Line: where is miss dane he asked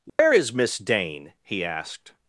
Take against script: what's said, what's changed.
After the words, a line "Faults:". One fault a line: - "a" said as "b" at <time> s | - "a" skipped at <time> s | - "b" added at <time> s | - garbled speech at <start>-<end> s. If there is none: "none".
where is miss dane he asked
Faults:
none